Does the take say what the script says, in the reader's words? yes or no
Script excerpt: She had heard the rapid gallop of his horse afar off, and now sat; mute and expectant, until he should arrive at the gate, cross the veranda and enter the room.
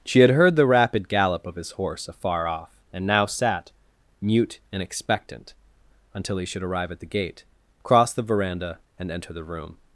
yes